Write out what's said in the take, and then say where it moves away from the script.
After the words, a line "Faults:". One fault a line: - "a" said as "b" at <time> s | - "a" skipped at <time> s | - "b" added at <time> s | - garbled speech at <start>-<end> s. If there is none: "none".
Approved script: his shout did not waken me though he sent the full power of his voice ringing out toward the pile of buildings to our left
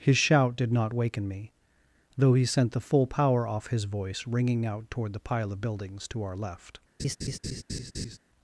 his shout did not waken me though he sent the full power off his voice ringing out toward the pile of buildings to our left
Faults:
- "of" said as "off" at 3.5 s